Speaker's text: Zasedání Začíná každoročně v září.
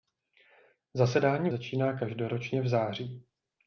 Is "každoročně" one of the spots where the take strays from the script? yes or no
no